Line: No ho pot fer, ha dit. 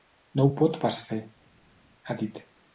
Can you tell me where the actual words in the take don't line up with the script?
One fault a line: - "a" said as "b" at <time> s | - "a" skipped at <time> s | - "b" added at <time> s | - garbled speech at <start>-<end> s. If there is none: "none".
- "pas" added at 0.8 s